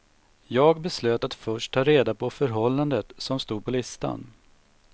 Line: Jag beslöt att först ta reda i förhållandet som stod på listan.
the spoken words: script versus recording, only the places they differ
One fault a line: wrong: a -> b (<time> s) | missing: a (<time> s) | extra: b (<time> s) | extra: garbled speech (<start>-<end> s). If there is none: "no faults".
wrong: i -> på (2.1 s)